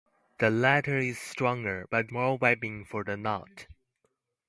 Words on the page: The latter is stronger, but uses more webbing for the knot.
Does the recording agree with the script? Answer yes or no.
no